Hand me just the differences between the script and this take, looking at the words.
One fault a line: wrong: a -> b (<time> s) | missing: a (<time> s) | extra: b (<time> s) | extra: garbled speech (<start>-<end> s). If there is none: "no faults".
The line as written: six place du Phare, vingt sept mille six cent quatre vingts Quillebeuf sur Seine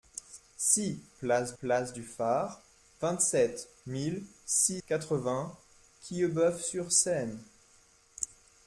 extra: place (1.6 s)
missing: cent (4.8 s)